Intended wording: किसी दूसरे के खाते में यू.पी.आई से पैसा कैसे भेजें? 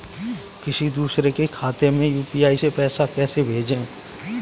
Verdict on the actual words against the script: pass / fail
pass